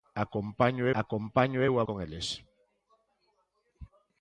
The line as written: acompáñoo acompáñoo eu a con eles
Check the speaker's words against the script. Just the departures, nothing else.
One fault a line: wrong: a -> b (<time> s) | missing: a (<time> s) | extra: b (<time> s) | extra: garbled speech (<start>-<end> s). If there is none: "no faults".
no faults